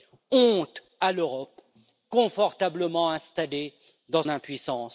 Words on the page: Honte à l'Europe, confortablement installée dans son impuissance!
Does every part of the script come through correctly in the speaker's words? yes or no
no